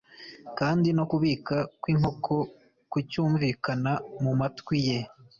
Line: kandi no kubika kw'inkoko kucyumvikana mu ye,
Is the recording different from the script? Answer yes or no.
yes